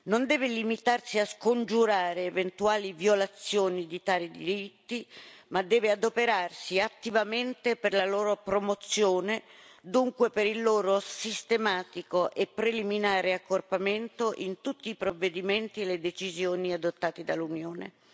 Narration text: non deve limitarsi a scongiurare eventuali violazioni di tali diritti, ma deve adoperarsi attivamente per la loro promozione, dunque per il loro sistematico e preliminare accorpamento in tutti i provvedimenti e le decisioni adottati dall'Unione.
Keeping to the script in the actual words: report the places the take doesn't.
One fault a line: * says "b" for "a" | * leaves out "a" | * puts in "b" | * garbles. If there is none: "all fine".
all fine